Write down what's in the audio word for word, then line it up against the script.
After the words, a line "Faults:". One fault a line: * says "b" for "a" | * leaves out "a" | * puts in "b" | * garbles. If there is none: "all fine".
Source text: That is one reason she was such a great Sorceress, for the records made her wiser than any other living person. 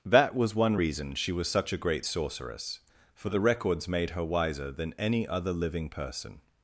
That was one reason she was such a great Sorceress, for the records made her wiser than any other living person.
Faults:
* says "was" for "is"